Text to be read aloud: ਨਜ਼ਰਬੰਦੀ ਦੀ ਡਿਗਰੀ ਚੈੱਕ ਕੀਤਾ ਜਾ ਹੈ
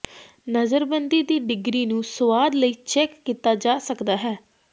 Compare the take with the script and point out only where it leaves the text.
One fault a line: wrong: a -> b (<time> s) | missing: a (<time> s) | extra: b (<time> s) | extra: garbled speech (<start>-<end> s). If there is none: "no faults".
extra: ਨੂੰ ਸੁਆਦ ਲਈ (1.9 s)
extra: ਸਕਦਾ (3.8 s)